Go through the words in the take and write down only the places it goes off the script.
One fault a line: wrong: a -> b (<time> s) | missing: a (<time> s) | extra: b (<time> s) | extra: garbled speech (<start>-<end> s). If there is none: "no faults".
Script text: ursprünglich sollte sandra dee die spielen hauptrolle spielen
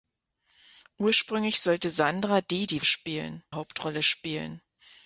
no faults